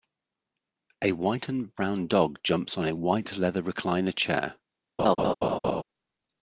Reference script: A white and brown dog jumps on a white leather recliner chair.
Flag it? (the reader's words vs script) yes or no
no